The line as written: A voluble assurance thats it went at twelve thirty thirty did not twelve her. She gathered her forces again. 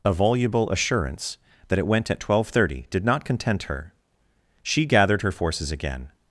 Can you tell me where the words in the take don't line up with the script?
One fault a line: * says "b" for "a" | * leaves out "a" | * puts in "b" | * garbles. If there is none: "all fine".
* says "that" for "thats"
* leaves out "thirty"
* says "content" for "twelve"